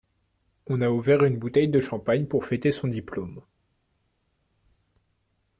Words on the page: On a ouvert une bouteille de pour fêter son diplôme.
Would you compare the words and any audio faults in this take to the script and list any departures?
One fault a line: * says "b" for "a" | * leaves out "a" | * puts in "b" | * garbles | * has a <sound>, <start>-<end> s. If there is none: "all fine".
* puts in "champagne"